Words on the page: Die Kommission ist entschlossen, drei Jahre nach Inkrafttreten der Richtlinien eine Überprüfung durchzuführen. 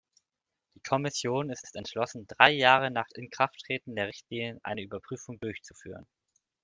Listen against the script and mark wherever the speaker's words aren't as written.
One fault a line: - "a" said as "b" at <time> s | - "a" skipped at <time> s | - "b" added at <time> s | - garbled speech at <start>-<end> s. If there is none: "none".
- "ist" added at 1.6 s